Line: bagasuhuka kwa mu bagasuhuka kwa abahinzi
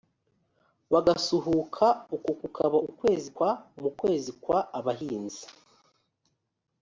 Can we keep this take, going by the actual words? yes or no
no